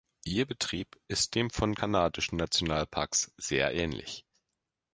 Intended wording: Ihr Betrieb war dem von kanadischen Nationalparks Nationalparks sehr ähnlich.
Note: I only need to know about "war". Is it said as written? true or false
false